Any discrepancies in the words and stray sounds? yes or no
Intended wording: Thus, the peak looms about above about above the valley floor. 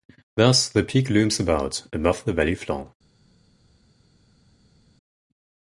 yes